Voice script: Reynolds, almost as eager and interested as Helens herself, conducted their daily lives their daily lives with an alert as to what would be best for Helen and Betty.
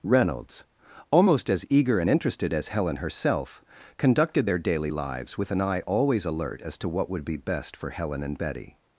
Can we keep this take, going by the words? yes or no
no